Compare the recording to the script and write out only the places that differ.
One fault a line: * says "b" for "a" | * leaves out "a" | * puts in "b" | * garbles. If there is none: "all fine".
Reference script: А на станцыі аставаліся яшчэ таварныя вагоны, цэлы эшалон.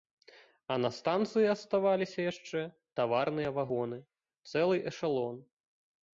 all fine